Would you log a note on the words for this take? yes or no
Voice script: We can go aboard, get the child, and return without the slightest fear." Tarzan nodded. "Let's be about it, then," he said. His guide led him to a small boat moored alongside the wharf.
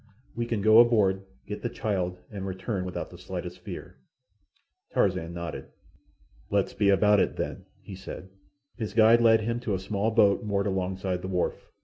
no